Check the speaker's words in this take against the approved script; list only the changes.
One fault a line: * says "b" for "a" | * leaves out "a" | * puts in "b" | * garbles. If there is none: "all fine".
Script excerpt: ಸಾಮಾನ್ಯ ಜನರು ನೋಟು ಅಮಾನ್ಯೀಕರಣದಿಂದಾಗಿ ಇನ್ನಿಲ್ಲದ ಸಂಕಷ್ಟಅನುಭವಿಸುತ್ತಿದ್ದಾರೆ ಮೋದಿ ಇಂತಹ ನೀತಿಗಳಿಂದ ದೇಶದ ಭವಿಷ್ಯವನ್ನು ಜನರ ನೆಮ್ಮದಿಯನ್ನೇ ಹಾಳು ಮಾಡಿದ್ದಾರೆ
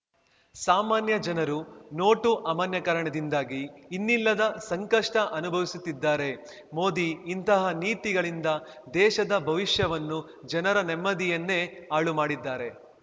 all fine